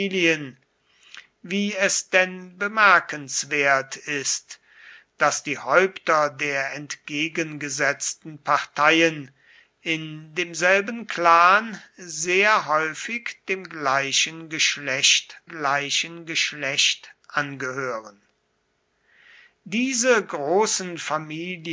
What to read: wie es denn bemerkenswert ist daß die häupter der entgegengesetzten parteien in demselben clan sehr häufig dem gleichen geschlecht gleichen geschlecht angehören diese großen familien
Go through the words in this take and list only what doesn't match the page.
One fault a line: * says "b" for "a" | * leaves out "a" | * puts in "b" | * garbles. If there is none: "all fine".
all fine